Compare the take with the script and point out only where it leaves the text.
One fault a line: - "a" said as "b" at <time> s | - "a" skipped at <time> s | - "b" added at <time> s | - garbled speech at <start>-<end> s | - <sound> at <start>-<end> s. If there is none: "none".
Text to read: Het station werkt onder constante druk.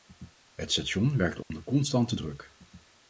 - dropout at 1.4-1.5 s